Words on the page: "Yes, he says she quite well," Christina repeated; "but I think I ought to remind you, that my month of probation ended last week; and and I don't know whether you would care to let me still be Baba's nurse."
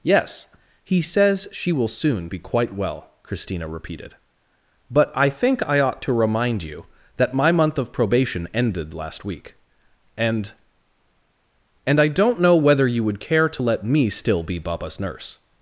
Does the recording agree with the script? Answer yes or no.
no